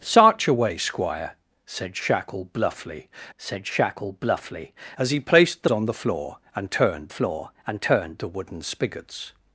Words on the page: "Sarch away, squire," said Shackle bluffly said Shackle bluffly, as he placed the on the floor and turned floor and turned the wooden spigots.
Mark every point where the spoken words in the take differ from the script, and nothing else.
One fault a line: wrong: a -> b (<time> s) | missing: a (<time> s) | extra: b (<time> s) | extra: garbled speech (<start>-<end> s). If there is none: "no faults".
no faults